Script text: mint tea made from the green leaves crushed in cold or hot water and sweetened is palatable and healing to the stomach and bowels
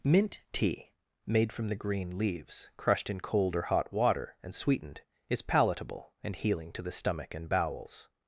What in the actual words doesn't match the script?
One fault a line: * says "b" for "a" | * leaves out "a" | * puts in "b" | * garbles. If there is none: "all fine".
all fine